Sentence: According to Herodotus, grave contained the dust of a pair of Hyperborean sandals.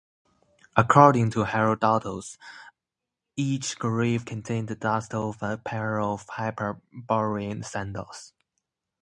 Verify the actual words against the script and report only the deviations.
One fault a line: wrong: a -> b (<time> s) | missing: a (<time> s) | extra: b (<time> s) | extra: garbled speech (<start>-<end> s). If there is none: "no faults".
extra: each (3.4 s)